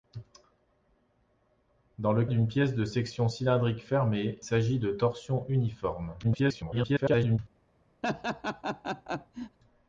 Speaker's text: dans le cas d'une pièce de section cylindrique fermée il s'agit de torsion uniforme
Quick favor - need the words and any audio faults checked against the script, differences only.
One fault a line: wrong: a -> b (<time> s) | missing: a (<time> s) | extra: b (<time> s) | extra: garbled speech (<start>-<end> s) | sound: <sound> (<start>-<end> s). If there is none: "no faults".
missing: cas (2.2 s)
missing: il (4.4 s)
extra: garbled speech (6.2-7.4 s)
sound: laugh (8.0-9.6 s)